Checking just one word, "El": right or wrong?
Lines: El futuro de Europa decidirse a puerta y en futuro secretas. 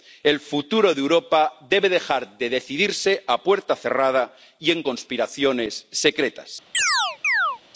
right